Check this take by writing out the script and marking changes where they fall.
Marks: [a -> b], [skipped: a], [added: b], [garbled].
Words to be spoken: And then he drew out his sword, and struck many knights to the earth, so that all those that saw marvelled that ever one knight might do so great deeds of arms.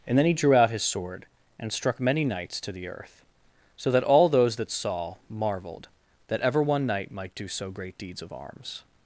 And then he drew out his sword, and struck many knights to the earth, so that all those that saw marvelled that ever one knight might do so great deeds of arms.